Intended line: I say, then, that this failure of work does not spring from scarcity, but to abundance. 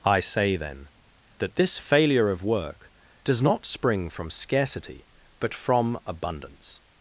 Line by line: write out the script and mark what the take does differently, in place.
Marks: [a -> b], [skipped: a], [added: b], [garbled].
I say, then, that this failure of work does not spring from scarcity, but [to -> from] abundance.